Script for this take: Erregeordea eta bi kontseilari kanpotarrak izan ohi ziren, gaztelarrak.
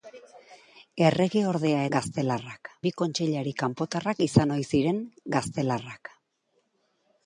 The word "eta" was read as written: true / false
false